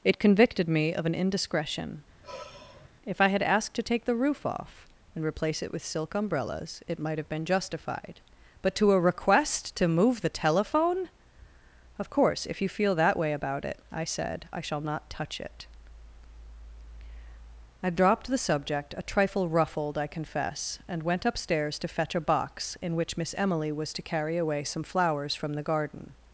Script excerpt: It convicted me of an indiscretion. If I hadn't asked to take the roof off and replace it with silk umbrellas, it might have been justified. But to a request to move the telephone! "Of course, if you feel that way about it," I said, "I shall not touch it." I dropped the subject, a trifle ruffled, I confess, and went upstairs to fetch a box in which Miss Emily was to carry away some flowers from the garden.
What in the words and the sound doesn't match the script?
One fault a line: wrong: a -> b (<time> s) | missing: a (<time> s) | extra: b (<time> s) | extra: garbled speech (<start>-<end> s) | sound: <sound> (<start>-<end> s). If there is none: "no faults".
sound: sigh (2.2-2.9 s)
wrong: hadn't -> had (3.3 s)